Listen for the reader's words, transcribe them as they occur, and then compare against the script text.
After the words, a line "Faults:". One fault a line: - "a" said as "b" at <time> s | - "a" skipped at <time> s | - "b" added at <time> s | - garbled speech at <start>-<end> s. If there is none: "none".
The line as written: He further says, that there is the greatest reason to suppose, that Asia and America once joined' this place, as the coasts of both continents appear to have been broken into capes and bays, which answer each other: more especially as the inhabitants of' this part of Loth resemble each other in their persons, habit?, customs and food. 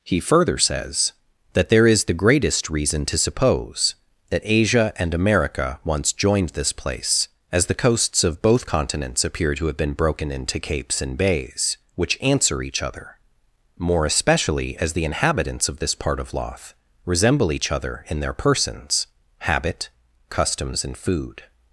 He further says, that there is the greatest reason to suppose, that Asia and America once joined' this place, as the coasts of both continents appear to have been broken into capes and bays, which answer each other: more especially as the inhabitants of' this part of Loth resemble each other in their persons, habit?, customs and food.
Faults:
none